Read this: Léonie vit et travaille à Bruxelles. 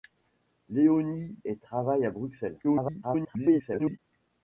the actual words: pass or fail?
fail